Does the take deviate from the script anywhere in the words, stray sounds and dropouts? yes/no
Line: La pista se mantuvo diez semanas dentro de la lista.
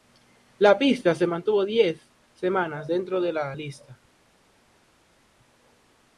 no